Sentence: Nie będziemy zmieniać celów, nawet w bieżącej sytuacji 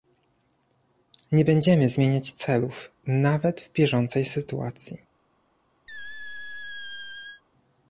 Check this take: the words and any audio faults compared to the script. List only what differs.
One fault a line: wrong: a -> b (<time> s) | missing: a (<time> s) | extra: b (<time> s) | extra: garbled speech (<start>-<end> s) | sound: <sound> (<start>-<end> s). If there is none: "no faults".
sound: squeak (5.9-7.4 s)